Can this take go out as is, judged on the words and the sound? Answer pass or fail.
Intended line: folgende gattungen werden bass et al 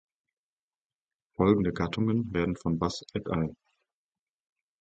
fail